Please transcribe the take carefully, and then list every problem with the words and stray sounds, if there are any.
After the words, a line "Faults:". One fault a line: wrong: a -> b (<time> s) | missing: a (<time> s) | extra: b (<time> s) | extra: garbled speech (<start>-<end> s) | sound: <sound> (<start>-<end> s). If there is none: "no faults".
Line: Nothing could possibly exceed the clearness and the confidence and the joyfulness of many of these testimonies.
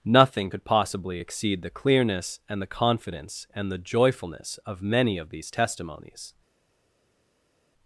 Nothing could possibly exceed the clearness and the confidence and the joyfulness of many of these testimonies.
Faults:
no faults